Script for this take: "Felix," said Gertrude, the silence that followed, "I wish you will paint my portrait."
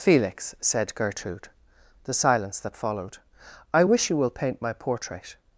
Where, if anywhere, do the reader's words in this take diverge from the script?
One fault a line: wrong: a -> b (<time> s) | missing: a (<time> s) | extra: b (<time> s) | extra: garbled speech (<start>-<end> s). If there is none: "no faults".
no faults